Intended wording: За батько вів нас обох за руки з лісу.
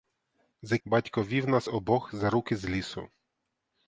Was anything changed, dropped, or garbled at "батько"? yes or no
no